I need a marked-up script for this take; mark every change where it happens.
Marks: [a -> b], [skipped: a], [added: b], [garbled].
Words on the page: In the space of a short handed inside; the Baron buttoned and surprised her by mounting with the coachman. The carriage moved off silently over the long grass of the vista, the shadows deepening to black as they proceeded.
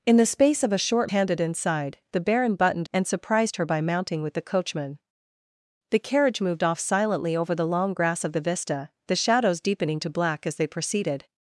In the space of a short handed inside; the Baron buttoned and surprised her by mounting with the coachman. The carriage moved off silently over the long grass of the vista, the shadows deepening to black as they proceeded.